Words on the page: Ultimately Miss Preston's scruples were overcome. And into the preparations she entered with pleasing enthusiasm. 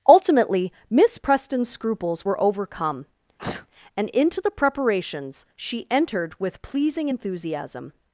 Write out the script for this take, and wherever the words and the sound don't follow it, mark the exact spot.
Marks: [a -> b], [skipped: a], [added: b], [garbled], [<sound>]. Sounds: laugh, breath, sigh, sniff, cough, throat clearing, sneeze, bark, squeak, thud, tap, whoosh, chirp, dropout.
Ultimately Miss Preston's scruples were overcome. [sneeze] And into the preparations she entered with pleasing enthusiasm.